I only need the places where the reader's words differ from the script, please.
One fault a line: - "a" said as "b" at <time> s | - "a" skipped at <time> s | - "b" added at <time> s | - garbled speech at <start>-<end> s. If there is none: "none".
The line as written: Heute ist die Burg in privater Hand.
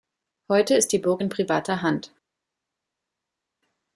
none